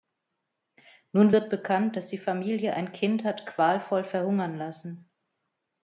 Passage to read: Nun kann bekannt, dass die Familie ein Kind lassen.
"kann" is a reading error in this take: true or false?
true